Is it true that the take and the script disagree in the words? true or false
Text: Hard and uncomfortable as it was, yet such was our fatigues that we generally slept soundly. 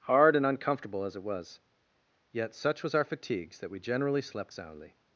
false